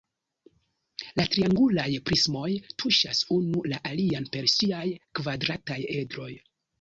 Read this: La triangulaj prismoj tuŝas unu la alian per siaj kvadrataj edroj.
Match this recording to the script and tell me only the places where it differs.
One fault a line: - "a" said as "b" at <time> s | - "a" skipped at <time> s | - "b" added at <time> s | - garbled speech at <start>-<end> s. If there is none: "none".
none